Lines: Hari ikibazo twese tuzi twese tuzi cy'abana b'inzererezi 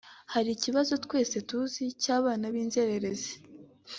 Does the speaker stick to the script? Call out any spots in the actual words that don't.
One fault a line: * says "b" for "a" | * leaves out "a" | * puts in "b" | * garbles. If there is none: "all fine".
* leaves out "twese tuzi"